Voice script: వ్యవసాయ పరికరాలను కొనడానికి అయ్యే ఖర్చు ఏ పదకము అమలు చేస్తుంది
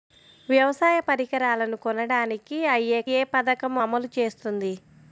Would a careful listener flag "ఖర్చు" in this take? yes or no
yes